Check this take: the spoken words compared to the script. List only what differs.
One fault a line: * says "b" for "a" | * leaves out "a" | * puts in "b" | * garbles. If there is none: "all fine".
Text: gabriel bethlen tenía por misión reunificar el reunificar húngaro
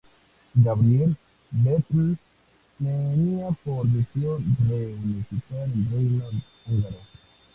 * says "reino" for "reunificar"